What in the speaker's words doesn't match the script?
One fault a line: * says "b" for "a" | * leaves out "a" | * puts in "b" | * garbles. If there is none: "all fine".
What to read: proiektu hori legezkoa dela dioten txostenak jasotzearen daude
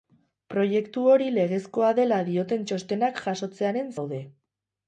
all fine